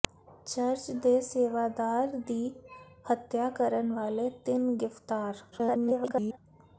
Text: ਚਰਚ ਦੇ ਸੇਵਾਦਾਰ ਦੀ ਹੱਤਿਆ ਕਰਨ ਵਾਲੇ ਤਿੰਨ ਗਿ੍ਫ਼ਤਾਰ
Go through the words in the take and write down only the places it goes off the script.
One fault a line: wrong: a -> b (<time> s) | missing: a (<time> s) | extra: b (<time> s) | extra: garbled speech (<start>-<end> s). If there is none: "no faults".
extra: garbled speech (5.5-6.4 s)